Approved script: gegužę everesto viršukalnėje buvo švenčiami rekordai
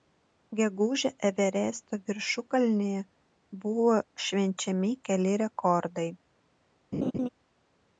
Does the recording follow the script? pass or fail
fail